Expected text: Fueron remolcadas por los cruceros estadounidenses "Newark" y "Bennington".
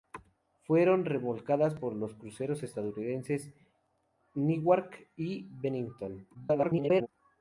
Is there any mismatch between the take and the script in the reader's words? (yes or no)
yes